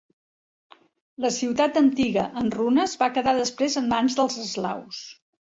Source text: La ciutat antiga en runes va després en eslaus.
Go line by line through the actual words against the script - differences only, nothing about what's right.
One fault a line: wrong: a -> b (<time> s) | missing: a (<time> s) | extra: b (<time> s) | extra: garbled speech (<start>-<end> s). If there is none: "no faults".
extra: quedar (3.2 s)
extra: mans dels (4.0 s)